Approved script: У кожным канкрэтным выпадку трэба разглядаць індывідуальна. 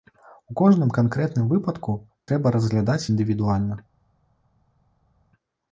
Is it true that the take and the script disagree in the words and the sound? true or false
false